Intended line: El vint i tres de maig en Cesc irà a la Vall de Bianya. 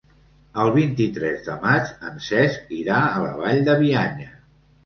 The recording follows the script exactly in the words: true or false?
true